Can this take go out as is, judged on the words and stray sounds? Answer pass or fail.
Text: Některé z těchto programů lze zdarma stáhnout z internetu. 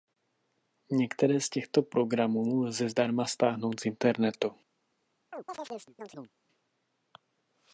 fail